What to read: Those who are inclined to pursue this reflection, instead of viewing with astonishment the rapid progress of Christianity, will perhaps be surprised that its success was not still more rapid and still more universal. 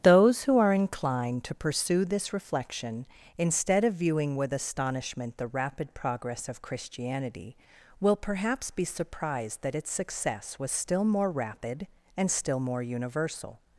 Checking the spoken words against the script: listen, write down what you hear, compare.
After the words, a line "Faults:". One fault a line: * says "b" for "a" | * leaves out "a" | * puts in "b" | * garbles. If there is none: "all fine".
Those who are inclined to pursue this reflection, instead of viewing with astonishment the rapid progress of Christianity, will perhaps be surprised that its success was still more rapid and still more universal.
Faults:
* leaves out "not"